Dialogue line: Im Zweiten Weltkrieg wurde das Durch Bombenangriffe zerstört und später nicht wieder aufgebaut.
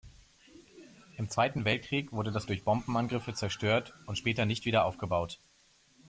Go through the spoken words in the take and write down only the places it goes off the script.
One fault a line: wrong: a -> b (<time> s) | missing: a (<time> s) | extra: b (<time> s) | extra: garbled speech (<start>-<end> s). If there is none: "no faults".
no faults